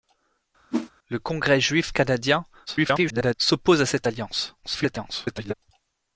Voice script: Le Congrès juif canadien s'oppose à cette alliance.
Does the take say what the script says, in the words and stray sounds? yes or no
no